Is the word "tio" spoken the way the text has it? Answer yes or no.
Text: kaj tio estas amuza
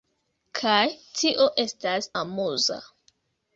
yes